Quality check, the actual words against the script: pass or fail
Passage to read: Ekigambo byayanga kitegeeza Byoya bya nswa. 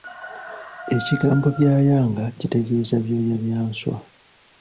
pass